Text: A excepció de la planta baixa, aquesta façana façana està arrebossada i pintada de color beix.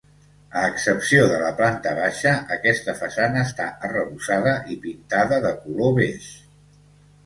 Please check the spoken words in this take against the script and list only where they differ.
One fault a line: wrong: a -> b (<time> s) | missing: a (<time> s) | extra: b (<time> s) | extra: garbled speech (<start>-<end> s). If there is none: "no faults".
missing: façana (3.5 s)